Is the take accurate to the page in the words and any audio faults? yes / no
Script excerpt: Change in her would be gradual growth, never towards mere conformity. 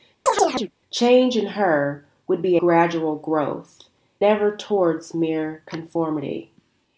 no